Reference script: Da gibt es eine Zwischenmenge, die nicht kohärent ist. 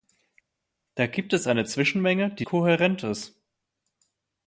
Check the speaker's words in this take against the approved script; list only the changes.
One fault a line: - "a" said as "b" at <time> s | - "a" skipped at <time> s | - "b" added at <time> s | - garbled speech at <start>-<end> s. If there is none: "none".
- "nicht" skipped at 2.4 s